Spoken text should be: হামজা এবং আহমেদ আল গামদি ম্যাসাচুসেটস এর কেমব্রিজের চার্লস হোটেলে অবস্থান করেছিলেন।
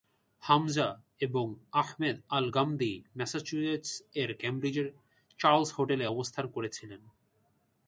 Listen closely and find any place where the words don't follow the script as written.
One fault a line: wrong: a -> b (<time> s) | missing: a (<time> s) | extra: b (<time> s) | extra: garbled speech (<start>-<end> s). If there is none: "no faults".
no faults